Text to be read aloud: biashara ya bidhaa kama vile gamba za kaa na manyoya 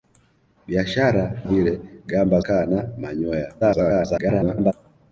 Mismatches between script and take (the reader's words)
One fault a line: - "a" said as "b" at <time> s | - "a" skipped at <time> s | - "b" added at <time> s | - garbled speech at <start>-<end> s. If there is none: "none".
- "ya bidhaa kama" skipped at 1.4 s
- "za" skipped at 2.4 s
- garbled speech at 3.6-4.7 s